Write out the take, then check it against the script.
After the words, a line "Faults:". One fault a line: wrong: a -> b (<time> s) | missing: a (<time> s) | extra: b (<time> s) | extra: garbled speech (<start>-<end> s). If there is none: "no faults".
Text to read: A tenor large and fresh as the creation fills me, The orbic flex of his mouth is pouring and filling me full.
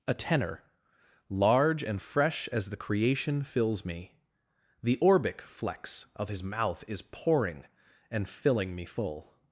A tenor large and fresh as the creation fills me, The orbic flex of his mouth is pouring and filling me full.
Faults:
no faults